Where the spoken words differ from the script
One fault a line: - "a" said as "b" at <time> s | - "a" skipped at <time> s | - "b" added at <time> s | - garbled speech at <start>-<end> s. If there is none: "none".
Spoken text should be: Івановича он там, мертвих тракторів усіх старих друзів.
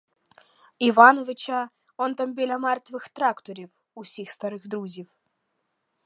- "біля" added at 2.3 s